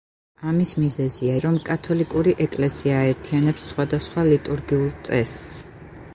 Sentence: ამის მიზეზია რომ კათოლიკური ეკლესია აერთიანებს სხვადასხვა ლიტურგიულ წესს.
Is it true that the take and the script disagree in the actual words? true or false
false